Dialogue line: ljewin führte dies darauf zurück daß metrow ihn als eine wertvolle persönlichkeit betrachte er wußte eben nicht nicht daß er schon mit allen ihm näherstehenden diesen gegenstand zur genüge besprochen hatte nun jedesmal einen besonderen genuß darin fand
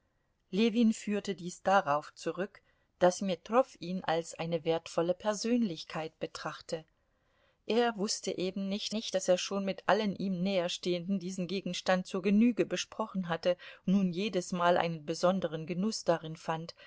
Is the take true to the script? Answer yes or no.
yes